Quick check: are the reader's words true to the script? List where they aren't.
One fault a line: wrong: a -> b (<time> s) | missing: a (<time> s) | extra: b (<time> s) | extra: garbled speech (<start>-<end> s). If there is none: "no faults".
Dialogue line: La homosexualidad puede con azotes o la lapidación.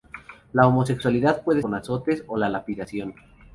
no faults